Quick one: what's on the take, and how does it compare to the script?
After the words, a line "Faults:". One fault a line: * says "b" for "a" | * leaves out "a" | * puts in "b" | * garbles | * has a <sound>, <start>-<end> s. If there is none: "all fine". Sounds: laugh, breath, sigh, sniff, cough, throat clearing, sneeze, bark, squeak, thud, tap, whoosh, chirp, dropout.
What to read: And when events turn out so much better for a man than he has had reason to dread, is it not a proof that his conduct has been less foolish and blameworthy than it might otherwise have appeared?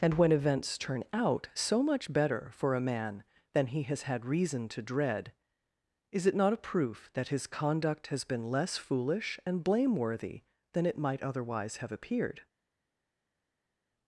And when events turn out so much better for a man than he has had reason to dread, is it not a proof that his conduct has been less foolish and blameworthy than it might otherwise have appeared?
Faults:
all fine